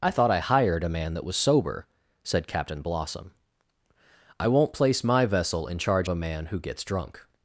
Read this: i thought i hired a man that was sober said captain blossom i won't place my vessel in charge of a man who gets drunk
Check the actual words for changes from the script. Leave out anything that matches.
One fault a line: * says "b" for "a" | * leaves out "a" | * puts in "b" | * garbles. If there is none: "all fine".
* leaves out "of"